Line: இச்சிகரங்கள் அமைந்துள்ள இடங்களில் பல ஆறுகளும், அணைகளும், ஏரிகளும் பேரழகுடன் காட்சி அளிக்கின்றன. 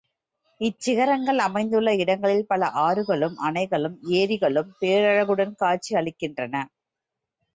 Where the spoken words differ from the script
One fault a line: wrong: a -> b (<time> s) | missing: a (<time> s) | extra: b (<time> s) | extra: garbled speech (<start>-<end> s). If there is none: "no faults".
no faults